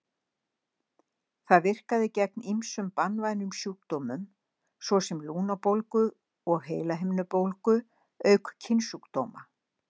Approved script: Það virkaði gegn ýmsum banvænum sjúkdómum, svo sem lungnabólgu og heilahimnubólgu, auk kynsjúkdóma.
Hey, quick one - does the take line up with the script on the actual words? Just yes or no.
yes